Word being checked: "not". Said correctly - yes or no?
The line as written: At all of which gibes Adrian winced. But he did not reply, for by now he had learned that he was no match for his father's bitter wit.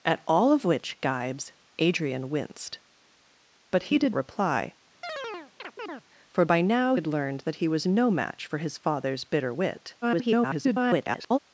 no